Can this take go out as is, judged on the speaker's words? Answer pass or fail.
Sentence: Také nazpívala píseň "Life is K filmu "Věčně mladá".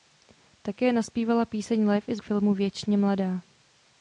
pass